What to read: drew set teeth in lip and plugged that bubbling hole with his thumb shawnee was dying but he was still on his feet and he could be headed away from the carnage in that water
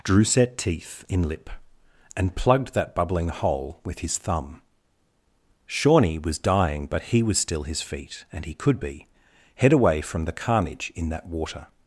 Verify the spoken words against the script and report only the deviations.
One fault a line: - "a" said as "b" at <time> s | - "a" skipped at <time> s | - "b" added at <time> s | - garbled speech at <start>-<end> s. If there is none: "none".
- "on" skipped at 7.6 s
- "headed" said as "head" at 9.6 s